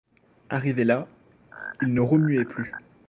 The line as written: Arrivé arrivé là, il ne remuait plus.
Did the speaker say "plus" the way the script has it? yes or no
yes